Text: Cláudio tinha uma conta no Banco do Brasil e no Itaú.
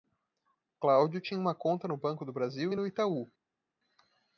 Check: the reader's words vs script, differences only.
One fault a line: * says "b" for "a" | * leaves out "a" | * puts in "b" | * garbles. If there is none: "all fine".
all fine